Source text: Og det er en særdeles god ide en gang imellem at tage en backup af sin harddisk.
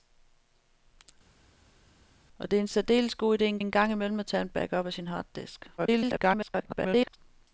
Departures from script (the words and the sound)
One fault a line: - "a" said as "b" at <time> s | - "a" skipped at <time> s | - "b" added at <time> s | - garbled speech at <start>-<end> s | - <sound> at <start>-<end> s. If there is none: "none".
- "en" added at 3.6 s
- garbled speech at 5.8-7.2 s